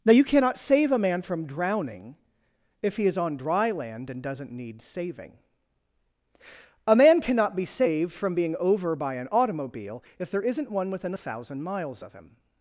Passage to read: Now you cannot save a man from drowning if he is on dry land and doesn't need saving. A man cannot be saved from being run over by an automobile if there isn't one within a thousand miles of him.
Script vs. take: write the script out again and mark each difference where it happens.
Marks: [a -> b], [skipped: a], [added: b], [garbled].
Now you cannot save a man from drowning if he is on dry land and doesn't need saving. A man cannot be saved from being [skipped: run] over by an automobile if there isn't one within a thousand miles of him.